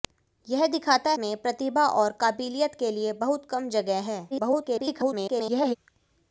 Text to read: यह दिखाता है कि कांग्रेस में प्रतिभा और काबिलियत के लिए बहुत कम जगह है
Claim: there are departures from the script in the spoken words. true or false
true